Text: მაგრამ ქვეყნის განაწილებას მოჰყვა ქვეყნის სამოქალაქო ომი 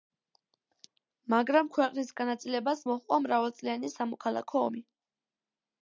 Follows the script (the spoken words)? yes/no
no